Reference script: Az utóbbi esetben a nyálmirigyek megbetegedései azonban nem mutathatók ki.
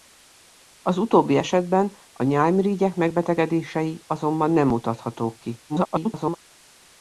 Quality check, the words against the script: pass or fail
fail